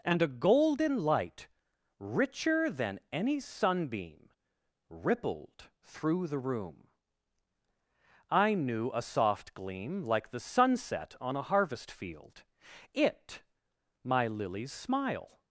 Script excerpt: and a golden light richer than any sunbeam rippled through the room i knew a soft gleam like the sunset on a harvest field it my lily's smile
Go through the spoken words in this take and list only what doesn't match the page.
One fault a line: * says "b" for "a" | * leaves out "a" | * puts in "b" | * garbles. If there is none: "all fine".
all fine